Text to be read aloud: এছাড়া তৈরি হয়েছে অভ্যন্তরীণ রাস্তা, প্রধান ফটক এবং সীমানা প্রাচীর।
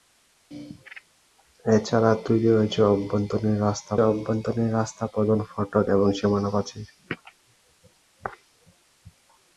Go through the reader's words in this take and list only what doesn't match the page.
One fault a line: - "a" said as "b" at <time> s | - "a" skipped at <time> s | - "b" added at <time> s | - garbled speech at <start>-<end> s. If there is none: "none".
- "অভ্যন্তরীণ রাস্তা" added at 4.0 s